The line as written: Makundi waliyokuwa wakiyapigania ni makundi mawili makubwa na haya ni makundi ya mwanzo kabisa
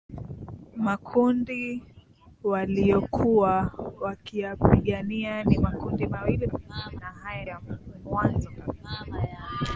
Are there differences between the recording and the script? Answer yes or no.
yes